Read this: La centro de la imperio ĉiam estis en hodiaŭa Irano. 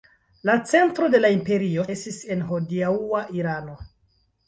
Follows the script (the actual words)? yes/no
no